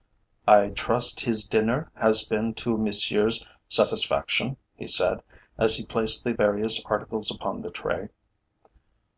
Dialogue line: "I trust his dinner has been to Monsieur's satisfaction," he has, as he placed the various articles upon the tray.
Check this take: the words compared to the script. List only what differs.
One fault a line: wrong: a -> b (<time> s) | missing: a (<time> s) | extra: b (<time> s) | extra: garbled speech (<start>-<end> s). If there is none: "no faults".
wrong: has -> said (4.9 s)